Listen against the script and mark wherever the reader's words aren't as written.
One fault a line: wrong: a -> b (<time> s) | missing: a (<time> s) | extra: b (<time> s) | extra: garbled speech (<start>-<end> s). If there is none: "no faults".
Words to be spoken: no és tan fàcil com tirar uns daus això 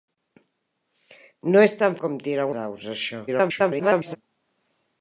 missing: fàcil (2.0 s)
missing: uns (2.5 s)
extra: garbled speech (3.3-4.2 s)